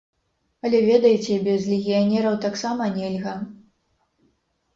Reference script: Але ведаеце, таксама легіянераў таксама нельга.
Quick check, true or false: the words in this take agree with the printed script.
false